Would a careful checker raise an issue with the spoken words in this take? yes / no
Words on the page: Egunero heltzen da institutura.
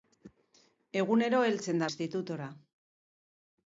no